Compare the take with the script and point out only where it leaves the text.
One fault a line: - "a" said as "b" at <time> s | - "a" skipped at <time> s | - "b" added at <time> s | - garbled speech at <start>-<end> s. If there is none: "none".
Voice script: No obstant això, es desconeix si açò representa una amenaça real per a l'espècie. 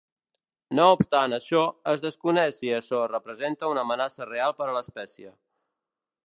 none